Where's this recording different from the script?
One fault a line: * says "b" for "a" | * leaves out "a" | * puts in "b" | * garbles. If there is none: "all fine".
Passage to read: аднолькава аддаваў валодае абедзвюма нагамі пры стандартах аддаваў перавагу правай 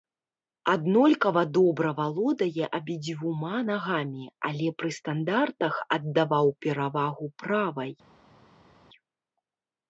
* says "добра" for "аддаваў"
* puts in "але"